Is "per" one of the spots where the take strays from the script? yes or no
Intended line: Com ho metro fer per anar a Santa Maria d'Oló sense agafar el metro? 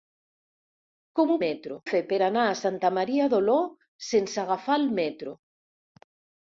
no